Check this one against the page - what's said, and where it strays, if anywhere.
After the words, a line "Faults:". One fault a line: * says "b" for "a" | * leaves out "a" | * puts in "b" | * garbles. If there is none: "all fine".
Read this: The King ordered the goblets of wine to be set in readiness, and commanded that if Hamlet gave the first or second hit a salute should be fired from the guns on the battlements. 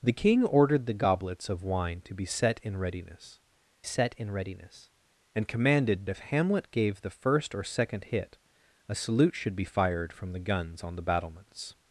The King ordered the goblets of wine to be set in readiness set in readiness, and commanded if Hamlet gave the first or second hit a salute should be fired from the guns on the battlements.
Faults:
* puts in "set in readiness"
* leaves out "that"